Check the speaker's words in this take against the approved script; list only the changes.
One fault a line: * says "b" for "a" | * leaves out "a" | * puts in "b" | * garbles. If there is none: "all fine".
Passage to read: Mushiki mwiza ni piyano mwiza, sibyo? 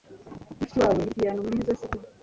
* says "wawe" for "mwiza"